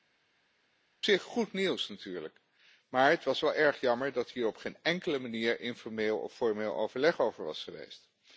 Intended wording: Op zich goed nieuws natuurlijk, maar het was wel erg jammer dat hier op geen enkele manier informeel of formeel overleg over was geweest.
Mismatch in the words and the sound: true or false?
false